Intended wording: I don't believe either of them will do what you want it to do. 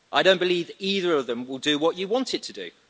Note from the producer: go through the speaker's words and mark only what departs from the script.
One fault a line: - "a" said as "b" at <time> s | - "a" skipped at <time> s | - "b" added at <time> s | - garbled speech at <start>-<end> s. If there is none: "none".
none